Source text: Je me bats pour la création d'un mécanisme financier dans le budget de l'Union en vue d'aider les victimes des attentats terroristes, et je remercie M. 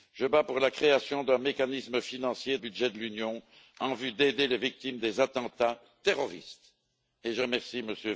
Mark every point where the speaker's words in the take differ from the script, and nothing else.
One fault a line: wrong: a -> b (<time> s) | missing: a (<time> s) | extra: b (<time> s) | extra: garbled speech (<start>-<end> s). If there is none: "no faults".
missing: me (0.2 s)
missing: dans le (2.6 s)